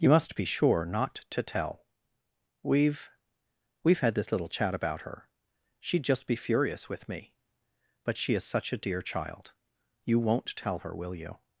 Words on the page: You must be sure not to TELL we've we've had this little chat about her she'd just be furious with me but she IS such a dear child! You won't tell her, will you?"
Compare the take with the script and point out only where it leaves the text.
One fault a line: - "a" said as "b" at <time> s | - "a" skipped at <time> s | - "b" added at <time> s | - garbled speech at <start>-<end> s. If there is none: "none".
none